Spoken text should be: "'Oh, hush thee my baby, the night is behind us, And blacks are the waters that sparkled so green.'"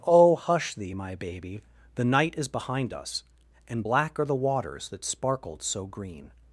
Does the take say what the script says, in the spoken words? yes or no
no